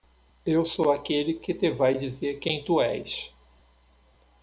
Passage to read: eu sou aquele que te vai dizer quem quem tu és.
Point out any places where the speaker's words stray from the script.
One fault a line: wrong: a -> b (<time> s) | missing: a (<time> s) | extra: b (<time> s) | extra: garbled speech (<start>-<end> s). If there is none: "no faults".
missing: quem (2.6 s)